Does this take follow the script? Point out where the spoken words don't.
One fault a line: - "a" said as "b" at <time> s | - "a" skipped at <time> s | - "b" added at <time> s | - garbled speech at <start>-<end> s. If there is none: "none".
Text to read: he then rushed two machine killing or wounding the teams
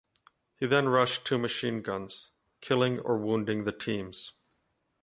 - "guns" added at 1.8 s